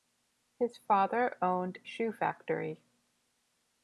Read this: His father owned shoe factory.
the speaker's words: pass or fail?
pass